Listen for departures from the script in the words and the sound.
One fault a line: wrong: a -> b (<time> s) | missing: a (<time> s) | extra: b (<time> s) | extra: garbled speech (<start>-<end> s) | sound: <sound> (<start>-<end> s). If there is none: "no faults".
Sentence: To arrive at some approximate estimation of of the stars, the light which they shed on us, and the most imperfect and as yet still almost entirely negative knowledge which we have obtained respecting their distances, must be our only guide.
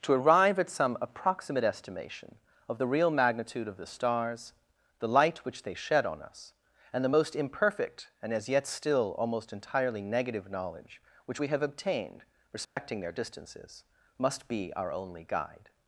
extra: the real magnitude (2.8 s)
sound: dropout (12.6-12.8 s)